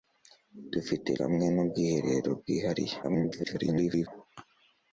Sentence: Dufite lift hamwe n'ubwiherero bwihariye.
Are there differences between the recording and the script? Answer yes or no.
yes